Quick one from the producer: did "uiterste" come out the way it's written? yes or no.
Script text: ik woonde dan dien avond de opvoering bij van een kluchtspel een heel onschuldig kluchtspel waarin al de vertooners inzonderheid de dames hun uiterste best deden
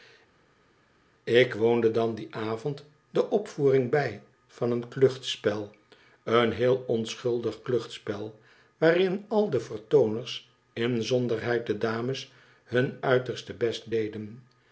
yes